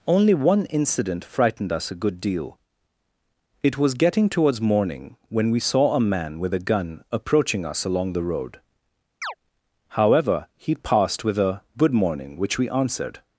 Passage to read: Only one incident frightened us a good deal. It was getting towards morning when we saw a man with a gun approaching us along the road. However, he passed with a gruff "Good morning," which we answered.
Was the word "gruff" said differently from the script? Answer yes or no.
yes